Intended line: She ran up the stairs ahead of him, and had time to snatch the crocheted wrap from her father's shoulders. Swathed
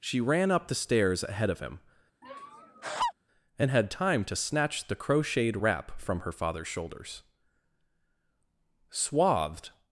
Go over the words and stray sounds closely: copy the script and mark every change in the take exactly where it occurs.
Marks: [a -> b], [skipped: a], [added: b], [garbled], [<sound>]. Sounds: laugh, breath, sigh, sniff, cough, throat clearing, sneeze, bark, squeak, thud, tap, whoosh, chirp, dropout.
She ran up the stairs ahead of him, [laugh] and had time to snatch the crocheted wrap from her father's shoulders. Swathed